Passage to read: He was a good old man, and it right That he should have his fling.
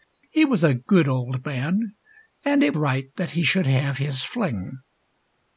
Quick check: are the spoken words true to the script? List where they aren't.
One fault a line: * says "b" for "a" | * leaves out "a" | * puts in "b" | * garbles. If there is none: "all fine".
all fine